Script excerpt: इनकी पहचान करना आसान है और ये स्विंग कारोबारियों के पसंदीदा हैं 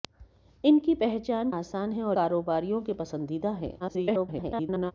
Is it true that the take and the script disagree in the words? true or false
true